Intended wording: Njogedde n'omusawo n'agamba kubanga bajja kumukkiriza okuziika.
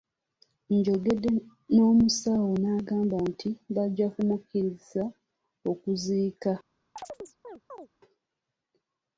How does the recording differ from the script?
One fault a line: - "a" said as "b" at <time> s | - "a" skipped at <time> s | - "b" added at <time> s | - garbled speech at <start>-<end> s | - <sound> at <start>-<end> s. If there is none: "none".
- "kubanga" said as "nti" at 3.3 s
- chirp at 7.0-7.9 s